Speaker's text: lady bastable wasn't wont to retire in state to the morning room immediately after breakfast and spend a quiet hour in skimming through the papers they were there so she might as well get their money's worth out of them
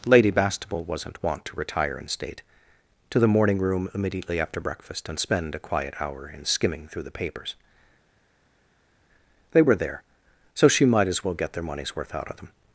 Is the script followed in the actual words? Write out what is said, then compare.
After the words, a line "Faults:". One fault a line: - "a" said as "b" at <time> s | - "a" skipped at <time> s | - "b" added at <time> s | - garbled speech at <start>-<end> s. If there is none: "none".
lady bastable wasn't wont to retire in state to the morning room immediately after breakfast and spend a quiet hour in skimming through the papers they were there so she might as well get their money's worth out of them
Faults:
none